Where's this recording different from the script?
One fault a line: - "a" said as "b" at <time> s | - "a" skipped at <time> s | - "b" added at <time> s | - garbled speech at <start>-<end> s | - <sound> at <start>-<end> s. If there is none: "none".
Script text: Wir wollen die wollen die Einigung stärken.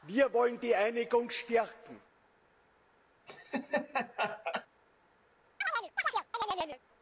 - "wollen die" skipped at 0.7 s
- laugh at 3.3-4.7 s
- chirp at 5.6-6.8 s